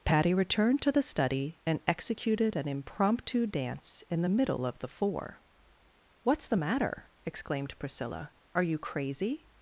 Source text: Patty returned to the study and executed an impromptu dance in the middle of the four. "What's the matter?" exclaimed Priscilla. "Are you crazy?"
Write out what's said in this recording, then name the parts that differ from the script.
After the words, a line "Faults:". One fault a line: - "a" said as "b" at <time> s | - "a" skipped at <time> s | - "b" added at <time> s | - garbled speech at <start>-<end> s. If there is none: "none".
Patty returned to the study and executed an impromptu dance in the middle of the four. "What's the matter?" exclaimed Priscilla. "Are you crazy?"
Faults:
none